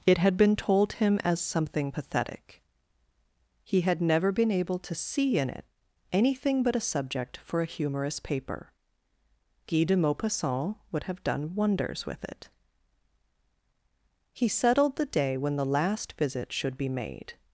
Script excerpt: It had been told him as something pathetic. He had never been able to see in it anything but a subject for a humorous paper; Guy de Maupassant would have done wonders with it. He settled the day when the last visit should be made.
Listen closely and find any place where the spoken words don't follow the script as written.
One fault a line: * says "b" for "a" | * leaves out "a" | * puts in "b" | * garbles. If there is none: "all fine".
all fine